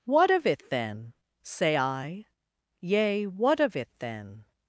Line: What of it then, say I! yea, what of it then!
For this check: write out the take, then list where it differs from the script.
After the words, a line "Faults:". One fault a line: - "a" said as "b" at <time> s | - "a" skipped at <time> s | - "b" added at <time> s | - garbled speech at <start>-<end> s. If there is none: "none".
What of it then, say I! yea, what of it then!
Faults:
none